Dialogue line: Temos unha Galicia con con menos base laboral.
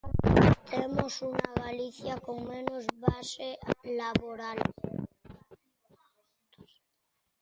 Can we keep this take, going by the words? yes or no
no